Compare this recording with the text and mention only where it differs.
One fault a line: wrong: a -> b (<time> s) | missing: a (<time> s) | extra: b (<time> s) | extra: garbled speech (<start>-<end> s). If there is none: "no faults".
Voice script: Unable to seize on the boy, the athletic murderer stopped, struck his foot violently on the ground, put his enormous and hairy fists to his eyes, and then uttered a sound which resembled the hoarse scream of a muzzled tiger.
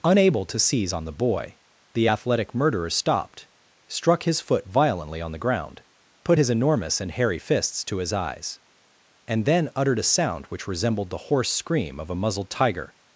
no faults